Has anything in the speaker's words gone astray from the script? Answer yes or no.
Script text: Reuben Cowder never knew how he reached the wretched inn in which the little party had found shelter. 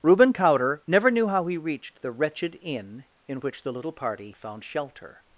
yes